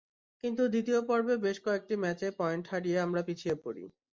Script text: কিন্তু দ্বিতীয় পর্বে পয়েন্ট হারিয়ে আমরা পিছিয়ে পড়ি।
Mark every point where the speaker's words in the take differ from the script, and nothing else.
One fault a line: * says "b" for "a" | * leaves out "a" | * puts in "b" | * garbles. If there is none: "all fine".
* puts in "বেশ কয়েকটি ম্যাচে"